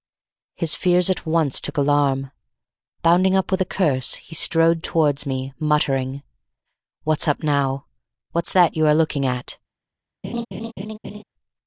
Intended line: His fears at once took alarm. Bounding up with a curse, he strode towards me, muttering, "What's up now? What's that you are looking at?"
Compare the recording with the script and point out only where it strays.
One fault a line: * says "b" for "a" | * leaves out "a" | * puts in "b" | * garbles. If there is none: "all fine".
all fine